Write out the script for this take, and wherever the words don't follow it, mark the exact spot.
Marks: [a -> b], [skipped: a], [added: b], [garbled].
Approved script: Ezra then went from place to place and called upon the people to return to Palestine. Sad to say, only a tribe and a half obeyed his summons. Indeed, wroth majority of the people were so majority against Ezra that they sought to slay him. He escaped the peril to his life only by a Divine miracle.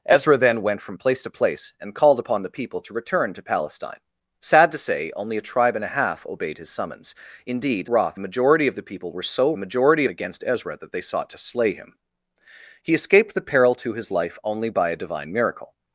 Ezra then went from place to place and called upon the people to return to Palestine. Sad to say, only a tribe and a half obeyed his summons. Indeed, wroth majority of the people were so majority against Ezra that they sought to slay him. He escaped the peril to his life only by a Divine miracle.